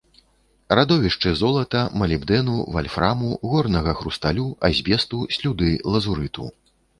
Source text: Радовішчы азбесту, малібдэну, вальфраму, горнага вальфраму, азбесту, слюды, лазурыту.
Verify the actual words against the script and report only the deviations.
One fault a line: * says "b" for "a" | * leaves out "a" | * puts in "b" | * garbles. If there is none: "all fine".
* says "золата" for "азбесту"
* says "хрусталю" for "вальфраму"